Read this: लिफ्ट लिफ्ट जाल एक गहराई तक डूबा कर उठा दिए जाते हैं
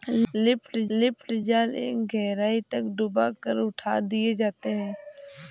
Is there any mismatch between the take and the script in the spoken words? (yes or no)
no